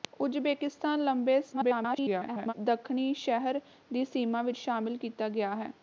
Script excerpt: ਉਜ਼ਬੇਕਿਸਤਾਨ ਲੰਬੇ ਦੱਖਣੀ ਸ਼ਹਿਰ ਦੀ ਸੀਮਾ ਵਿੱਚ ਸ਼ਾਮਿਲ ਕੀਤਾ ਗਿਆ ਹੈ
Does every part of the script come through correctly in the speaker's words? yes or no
no